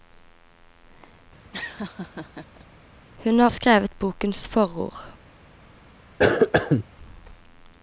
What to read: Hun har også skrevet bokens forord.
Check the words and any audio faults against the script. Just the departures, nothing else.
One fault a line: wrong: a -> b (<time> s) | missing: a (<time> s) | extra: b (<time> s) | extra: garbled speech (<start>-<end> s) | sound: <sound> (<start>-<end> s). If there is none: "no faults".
sound: laugh (1.5-2.7 s)
missing: også (3.5 s)
sound: cough (6.2-6.9 s)